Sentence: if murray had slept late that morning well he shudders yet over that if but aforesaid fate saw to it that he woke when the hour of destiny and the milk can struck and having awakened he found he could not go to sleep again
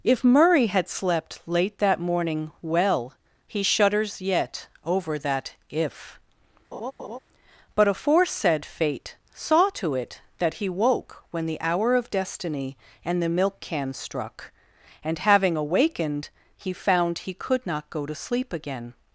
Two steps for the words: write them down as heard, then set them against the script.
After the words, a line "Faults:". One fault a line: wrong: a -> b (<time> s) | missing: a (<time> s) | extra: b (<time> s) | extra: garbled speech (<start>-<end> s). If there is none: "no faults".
if murray had slept late that morning well he shudders yet over that if but aforesaid fate saw to it that he woke when the hour of destiny and the milk can struck and having awakened he found he could not go to sleep again
Faults:
no faults